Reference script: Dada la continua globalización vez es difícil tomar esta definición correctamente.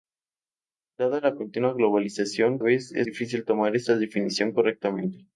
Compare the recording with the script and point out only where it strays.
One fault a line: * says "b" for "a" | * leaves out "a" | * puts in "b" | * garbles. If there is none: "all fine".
all fine